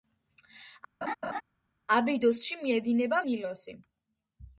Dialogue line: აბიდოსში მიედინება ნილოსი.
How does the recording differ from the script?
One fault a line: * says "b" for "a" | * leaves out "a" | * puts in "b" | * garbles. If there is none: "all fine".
all fine